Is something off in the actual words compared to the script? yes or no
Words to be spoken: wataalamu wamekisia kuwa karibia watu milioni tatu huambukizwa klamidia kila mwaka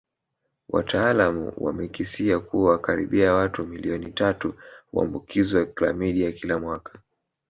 no